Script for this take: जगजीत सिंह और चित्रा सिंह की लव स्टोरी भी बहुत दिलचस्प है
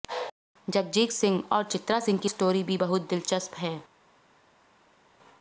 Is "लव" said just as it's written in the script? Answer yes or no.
no